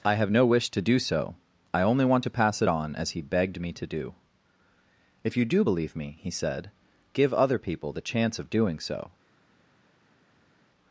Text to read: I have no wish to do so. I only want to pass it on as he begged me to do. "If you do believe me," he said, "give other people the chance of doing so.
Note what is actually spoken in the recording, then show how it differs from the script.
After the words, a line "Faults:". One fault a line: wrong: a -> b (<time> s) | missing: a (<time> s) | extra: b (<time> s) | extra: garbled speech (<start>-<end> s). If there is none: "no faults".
I have no wish to do so. I only want to pass it on as he begged me to do. "If you do believe me," he said, "give other people the chance of doing so.
Faults:
no faults